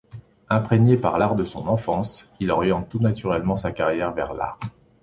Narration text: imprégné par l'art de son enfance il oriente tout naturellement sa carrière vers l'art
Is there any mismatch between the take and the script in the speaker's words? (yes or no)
no